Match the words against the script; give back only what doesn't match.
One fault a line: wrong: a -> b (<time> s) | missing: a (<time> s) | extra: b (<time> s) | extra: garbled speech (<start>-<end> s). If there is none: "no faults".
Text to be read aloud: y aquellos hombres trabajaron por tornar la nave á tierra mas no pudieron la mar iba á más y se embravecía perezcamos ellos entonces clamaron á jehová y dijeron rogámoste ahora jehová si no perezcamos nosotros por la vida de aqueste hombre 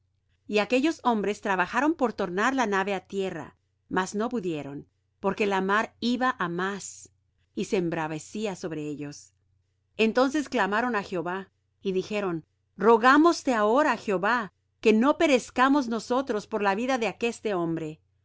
extra: porque (5.2 s)
wrong: perezcamos -> sobre (8.5 s)
wrong: si -> que (14.8 s)